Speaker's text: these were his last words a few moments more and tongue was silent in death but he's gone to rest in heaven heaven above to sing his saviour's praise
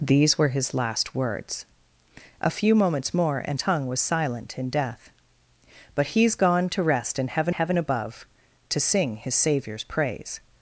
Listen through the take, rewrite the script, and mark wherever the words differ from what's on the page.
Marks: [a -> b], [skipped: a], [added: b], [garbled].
these were his last words a few moments more and tongue was silent in death but he's gone to rest in heaven heaven above to sing his saviour's praise